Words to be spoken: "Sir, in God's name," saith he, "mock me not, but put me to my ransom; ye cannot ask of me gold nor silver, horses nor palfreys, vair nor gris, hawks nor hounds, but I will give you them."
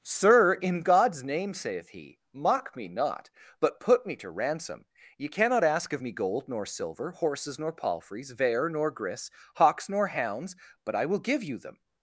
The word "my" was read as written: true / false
false